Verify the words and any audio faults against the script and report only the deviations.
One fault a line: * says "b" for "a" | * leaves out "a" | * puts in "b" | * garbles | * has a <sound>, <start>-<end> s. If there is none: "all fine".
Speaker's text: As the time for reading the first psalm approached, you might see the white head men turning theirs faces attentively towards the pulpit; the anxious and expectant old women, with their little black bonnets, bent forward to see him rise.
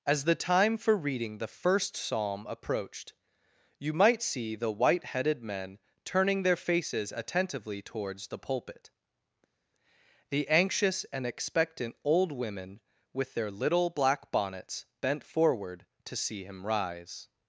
* says "headed" for "head"
* says "their" for "theirs"